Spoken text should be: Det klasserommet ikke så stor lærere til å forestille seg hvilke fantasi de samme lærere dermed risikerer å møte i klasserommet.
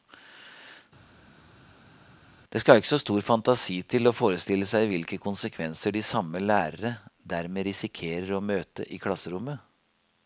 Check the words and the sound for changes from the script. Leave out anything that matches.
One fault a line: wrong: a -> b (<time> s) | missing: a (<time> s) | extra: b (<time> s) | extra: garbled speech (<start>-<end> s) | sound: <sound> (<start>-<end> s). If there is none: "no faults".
wrong: klasserommet -> skal (2.6 s)
wrong: lærere -> fantasi (3.3 s)
wrong: fantasi -> konsekvenser (5.3 s)